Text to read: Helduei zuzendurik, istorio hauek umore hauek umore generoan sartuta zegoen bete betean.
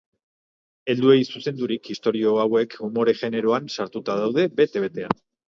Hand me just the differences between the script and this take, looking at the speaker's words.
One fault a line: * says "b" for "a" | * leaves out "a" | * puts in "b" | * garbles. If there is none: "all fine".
* leaves out "hauek umore"
* says "daude" for "zegoen"